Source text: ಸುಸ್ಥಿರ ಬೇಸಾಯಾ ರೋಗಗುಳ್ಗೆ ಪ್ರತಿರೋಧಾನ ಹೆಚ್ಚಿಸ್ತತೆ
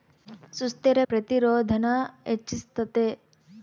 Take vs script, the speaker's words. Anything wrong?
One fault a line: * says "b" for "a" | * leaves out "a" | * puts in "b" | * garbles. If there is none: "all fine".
* leaves out "ಬೇಸಾಯಾ ರೋಗಗುಳ್ಗೆ"